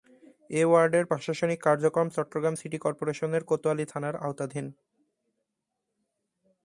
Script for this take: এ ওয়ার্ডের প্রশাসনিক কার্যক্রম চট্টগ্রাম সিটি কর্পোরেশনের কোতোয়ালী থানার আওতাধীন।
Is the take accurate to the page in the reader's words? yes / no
yes